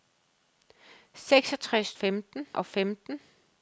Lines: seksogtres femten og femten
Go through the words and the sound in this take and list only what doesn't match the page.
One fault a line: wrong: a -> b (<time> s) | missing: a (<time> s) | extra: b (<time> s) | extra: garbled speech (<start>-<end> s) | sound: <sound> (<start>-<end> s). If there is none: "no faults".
no faults